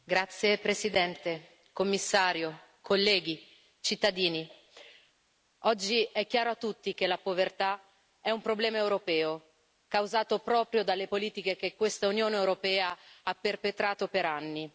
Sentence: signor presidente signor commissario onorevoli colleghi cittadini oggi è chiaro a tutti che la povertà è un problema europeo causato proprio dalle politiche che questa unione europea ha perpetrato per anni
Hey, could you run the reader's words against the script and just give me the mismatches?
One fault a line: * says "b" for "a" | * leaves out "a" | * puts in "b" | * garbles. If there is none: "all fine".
all fine